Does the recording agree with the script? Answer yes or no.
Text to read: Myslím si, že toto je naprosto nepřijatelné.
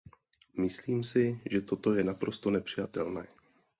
yes